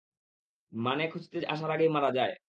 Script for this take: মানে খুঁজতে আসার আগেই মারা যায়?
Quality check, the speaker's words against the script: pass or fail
pass